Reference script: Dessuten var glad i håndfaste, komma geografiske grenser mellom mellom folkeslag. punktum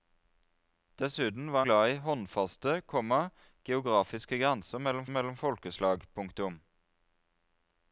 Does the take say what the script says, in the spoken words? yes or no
yes